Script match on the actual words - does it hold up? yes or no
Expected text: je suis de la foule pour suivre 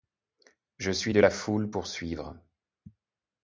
yes